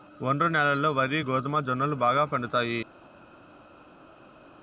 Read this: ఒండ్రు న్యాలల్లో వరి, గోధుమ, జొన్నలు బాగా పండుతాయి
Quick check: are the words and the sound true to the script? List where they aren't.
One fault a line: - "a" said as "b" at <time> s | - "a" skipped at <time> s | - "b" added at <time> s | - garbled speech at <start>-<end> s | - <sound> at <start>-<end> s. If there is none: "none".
none